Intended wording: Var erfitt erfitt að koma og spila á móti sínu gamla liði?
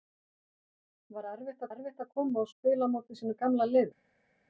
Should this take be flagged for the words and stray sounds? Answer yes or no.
no